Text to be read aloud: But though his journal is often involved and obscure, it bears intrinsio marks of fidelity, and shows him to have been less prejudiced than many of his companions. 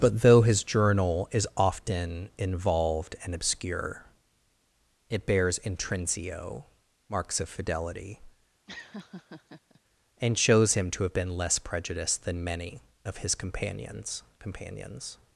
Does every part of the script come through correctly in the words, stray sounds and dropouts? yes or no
no